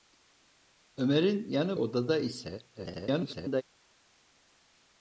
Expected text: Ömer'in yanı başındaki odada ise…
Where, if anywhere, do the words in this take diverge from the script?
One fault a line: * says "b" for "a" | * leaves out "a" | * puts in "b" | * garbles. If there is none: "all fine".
* leaves out "başındaki"
* garbles